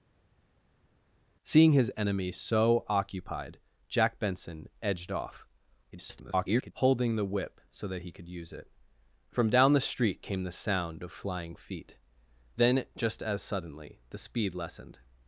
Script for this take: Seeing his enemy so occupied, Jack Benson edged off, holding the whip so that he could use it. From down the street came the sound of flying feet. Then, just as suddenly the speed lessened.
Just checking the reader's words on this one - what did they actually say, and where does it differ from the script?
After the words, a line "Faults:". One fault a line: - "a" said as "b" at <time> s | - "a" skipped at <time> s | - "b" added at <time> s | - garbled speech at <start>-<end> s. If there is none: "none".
Seeing his enemy so occupied, Jack Benson edged off, [garbled] holding the whip so that he could use it. From down the street came the sound of flying feet. Then, just as suddenly the speed lessened.
Faults:
- garbled speech at 5.9-6.7 s